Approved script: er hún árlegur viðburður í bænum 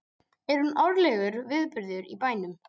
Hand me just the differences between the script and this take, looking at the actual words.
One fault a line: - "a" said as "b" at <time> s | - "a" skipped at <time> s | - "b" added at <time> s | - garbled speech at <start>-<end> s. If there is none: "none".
none